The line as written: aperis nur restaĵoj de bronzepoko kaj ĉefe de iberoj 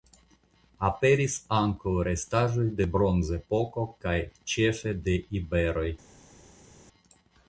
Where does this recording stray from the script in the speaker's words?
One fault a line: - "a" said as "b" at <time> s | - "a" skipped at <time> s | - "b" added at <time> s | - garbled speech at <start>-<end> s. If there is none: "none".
- "nur" said as "ankaŭ" at 1.6 s